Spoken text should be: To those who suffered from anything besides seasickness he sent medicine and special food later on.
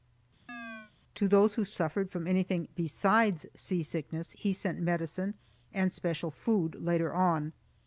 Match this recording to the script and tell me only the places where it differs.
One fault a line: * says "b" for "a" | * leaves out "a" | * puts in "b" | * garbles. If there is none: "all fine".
all fine